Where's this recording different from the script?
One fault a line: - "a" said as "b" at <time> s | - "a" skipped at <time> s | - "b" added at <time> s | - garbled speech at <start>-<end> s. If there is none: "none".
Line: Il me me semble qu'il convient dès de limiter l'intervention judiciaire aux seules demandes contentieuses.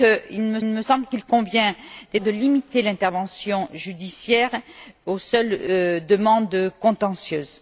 none